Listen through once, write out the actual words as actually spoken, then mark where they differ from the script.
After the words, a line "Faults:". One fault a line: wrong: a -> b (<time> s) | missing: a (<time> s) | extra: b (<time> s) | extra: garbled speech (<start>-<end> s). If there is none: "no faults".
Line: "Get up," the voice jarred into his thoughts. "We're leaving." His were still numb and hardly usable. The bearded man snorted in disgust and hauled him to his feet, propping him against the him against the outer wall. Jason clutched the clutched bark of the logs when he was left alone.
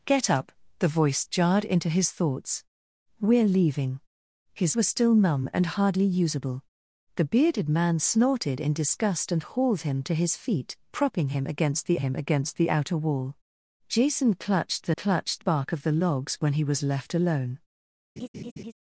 "Get up," the voice jarred into his thoughts. "We're leaving." His were still numb and hardly usable. The bearded man snorted in disgust and hauled him to his feet, propping him against the him against the outer wall. Jason clutched the clutched bark of the logs when he was left alone.
Faults:
no faults